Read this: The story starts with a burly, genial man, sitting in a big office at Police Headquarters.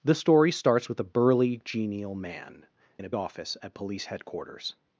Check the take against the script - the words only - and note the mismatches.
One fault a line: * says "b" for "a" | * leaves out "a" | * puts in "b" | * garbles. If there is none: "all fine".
* leaves out "sitting"
* leaves out "big"